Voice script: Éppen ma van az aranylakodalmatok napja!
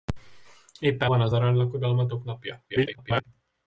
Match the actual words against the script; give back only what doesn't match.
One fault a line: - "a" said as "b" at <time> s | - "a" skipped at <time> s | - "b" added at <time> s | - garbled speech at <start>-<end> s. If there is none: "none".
- "ma" skipped at 1.1 s
- garbled speech at 2.7-3.2 s